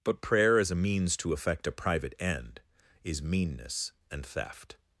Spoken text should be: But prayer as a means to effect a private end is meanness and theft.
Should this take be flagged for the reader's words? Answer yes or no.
no